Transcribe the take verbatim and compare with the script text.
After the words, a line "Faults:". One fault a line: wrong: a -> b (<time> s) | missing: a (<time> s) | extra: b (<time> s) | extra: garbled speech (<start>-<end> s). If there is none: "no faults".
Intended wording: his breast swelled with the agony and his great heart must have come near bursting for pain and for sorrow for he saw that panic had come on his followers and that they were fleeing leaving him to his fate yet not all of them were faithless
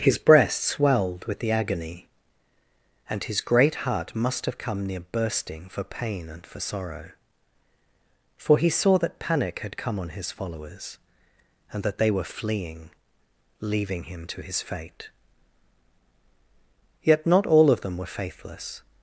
his breast swelled with the agony and his great heart must have come near bursting for pain and for sorrow for he saw that panic had come on his followers and that they were fleeing leaving him to his fate yet not all of them were faithless
Faults:
no faults